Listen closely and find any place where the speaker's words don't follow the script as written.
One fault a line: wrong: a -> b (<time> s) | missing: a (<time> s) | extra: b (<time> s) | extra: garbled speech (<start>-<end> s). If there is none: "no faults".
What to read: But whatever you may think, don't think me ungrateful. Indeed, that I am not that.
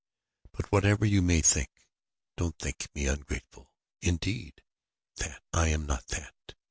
no faults